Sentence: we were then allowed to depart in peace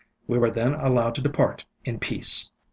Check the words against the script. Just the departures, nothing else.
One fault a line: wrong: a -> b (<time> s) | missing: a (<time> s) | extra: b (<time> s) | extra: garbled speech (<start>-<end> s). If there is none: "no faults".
no faults